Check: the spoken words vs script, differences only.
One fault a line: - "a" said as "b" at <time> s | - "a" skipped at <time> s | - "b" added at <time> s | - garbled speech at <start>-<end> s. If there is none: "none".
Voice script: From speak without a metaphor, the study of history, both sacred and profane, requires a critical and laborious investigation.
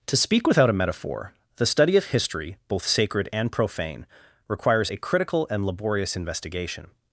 - "From" said as "To" at 0.1 s